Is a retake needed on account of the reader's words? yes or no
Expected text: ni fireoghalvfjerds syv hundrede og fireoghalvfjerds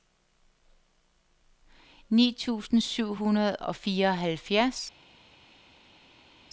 yes